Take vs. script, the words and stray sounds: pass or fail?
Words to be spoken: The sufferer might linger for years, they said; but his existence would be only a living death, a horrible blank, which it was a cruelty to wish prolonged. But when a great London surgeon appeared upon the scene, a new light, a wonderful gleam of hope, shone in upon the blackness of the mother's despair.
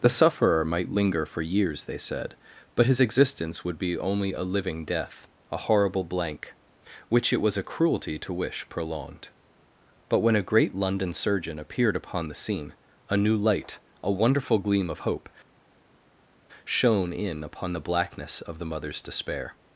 pass